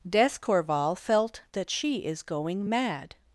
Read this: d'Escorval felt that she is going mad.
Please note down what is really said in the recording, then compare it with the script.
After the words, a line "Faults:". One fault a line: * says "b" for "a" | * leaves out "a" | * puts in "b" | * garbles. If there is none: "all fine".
d'Escorval felt that she is going mad.
Faults:
all fine